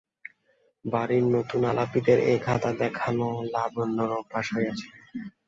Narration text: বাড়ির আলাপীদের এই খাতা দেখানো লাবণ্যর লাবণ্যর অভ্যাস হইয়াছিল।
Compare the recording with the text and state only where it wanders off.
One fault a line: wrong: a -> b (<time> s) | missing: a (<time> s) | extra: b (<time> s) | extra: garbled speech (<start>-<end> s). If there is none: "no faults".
extra: নূতন (1.3 s)
missing: লাবণ্যর (4.1 s)